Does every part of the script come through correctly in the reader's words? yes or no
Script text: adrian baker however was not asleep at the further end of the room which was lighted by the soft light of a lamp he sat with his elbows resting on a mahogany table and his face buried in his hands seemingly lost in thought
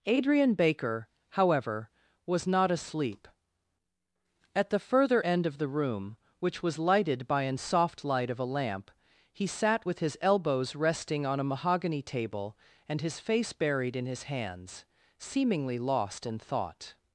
no